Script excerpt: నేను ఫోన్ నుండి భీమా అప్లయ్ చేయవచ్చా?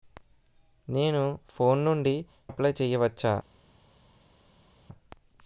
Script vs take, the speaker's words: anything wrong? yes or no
yes